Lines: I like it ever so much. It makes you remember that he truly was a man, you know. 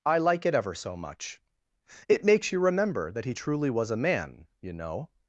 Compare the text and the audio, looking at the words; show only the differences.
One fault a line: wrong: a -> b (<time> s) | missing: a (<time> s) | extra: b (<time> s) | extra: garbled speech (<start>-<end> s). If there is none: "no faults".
no faults